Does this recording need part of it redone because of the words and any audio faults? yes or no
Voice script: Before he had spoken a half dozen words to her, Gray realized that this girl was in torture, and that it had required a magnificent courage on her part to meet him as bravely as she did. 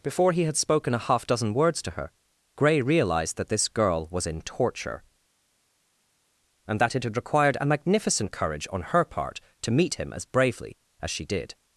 no